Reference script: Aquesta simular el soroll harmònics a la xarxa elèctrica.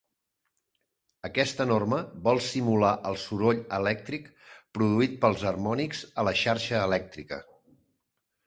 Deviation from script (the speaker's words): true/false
true